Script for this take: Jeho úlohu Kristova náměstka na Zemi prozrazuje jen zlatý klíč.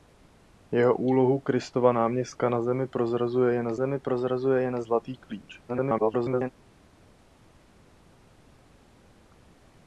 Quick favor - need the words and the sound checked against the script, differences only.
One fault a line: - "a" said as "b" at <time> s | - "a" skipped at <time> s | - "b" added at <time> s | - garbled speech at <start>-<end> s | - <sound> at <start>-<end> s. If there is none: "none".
- "Zemi prozrazuje jen" added at 3.7 s
- garbled speech at 5.7-6.5 s